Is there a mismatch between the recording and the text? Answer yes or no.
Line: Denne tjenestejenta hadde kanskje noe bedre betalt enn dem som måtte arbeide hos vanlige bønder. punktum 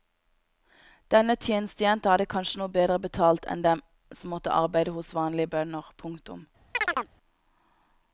no